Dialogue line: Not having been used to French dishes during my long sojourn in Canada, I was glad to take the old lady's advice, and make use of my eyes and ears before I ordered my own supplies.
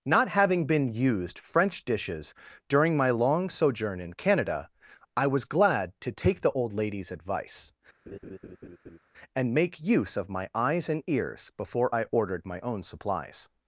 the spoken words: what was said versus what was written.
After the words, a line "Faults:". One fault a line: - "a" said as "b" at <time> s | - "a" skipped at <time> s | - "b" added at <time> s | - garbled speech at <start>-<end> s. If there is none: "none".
Not having been used French dishes during my long sojourn in Canada, I was glad to take the old lady's advice, and make use of my eyes and ears before I ordered my own supplies.
Faults:
- "to" skipped at 1.4 s